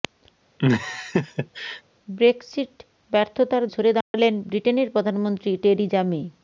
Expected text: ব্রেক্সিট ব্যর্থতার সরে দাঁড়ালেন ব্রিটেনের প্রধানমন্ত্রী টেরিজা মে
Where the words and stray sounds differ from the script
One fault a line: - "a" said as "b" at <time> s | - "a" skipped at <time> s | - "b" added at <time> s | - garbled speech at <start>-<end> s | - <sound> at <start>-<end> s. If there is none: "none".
- laugh at 0.6-1.8 s
- dropout at 4.0-4.1 s